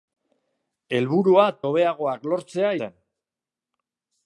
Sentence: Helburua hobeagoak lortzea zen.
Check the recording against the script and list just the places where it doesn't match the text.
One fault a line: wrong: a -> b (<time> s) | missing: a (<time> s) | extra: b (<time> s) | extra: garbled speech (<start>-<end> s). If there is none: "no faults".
no faults